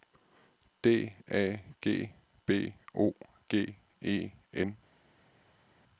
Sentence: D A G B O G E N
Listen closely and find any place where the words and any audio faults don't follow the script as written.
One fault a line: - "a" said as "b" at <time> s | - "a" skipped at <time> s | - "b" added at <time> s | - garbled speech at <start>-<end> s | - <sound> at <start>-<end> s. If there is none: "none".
none